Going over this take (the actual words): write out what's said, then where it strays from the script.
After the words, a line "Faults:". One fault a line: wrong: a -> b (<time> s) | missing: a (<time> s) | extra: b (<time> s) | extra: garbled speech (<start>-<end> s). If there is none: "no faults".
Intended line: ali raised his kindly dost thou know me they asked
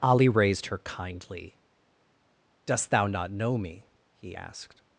ali raised her kindly dost thou not know me he asked
Faults:
wrong: his -> her (0.7 s)
extra: not (3.0 s)
wrong: they -> he (4.2 s)